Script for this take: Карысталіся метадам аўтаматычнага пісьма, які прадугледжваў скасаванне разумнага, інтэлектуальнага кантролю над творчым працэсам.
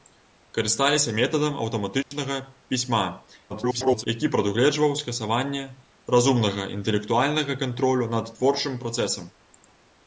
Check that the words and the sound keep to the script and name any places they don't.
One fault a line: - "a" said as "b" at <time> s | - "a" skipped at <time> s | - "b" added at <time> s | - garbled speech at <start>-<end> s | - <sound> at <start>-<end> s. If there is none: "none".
- dropout at 2.0-2.1 s
- garbled speech at 3.5-4.0 s